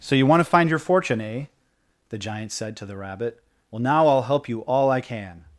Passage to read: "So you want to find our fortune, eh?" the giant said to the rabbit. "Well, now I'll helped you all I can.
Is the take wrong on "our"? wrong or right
wrong